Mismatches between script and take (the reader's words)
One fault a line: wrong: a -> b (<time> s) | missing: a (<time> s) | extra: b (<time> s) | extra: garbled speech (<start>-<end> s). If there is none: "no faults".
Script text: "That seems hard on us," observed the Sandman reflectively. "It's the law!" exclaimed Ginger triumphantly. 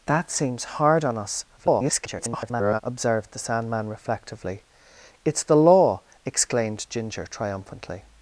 extra: garbled speech (1.6-2.8 s)